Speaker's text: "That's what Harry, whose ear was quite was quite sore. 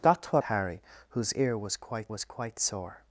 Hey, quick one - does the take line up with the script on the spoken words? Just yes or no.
yes